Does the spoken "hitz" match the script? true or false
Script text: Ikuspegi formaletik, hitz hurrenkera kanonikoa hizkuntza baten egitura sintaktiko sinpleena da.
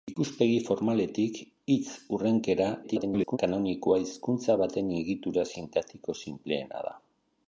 true